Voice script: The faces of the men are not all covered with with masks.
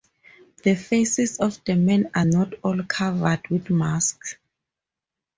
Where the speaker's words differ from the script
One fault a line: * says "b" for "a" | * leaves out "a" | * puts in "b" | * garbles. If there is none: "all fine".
* leaves out "with"